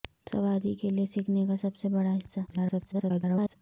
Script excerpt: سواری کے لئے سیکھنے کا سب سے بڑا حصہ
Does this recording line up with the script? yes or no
no